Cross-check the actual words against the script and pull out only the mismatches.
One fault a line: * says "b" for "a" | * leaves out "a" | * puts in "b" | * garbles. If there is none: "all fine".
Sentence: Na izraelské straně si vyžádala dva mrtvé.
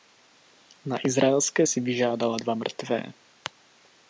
* leaves out "straně"